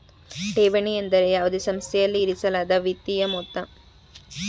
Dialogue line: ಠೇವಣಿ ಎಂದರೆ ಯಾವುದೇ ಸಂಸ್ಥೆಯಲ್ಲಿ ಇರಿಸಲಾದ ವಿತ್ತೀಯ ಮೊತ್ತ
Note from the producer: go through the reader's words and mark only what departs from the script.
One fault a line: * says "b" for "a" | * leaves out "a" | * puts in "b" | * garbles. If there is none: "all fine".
all fine